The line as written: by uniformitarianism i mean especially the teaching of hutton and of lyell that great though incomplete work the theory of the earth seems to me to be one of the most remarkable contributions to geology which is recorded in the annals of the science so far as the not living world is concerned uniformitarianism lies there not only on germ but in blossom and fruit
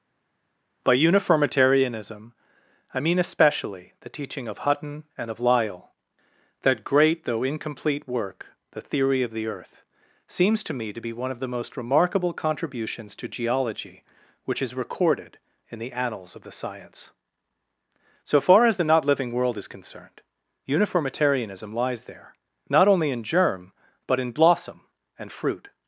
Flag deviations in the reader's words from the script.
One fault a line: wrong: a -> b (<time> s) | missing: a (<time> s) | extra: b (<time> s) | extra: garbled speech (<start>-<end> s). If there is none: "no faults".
wrong: on -> in (23.1 s)